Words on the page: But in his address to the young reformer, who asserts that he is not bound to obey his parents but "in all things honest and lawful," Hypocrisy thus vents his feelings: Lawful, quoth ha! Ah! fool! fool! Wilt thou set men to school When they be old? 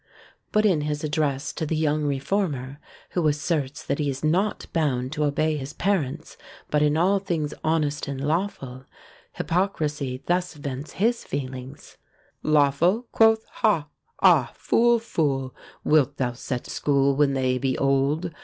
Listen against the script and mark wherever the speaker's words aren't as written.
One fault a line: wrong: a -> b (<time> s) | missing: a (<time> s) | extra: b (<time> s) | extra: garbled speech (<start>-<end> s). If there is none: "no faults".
missing: men to (16.7 s)